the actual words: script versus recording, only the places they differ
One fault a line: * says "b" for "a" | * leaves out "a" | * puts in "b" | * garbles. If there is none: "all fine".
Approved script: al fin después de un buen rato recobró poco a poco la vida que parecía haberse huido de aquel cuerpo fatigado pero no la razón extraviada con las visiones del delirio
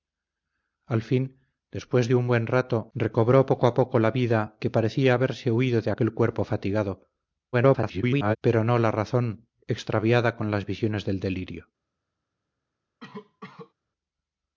* garbles